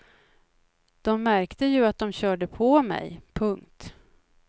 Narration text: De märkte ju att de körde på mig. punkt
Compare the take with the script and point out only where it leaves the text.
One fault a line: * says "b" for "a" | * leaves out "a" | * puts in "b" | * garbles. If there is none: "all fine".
all fine